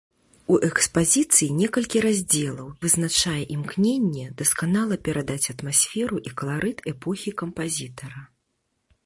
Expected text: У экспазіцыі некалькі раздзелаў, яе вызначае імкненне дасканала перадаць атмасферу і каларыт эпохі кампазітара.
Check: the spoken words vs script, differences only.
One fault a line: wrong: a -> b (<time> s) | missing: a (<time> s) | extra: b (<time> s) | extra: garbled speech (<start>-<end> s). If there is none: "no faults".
missing: яе (2.7 s)